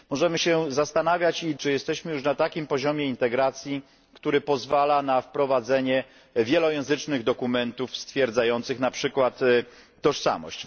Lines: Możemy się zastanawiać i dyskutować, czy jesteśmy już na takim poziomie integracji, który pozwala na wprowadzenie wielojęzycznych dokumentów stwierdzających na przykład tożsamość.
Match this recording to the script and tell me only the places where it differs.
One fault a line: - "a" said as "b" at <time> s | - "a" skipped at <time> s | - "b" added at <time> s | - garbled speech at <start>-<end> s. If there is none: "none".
- "dyskutować" skipped at 1.5 s